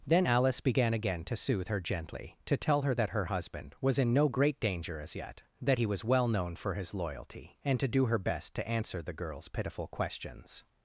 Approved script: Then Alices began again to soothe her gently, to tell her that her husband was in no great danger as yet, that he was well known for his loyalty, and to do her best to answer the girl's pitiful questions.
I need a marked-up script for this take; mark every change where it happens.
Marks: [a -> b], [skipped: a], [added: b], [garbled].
Then [Alices -> Alice] began again to soothe her gently, to tell her that her husband was in no great danger as yet, that he was well known for his loyalty, and to do her best to answer the girl's pitiful questions.